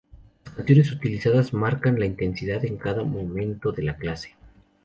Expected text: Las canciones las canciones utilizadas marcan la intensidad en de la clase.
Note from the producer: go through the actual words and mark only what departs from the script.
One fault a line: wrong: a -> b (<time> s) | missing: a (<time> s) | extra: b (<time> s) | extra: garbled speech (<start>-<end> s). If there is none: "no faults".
missing: las canciones (0.9 s)
extra: cada momento (2.8 s)